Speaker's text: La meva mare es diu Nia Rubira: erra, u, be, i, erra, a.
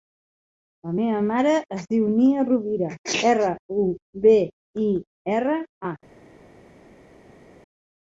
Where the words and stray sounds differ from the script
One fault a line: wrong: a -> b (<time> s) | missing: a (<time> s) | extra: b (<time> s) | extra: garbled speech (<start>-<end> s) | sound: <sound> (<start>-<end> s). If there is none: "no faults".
no faults